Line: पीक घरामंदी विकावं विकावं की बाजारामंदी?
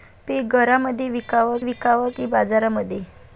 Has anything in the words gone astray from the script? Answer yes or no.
no